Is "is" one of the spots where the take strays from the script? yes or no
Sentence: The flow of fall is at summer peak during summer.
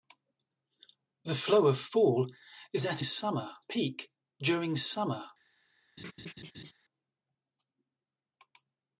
no